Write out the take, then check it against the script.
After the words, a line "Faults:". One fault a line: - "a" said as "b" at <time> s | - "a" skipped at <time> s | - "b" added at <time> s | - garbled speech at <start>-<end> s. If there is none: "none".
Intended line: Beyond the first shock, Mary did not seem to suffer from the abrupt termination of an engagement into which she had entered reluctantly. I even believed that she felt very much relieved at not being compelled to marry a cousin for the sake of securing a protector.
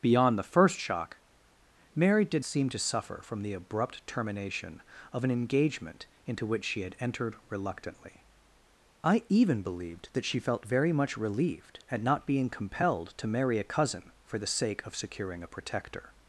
Beyond the first shock, Mary did seem to suffer from the abrupt termination of an engagement into which she had entered reluctantly. I even believed that she felt very much relieved at not being compelled to marry a cousin for the sake of securing a protector.
Faults:
- "not" skipped at 2.4 s